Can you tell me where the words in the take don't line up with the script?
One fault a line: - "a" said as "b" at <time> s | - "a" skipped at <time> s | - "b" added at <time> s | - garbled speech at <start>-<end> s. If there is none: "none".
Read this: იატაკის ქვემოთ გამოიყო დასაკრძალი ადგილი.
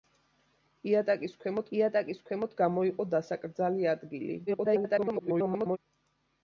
- "იატაკის ქვემოთ" added at 1.8 s
- garbled speech at 4.5-5.8 s